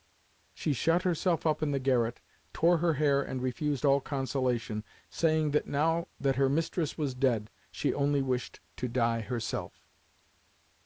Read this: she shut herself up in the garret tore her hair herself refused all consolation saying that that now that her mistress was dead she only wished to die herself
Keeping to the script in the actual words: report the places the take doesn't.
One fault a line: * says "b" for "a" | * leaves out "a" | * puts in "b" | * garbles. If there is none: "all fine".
* says "and" for "herself"
* leaves out "that"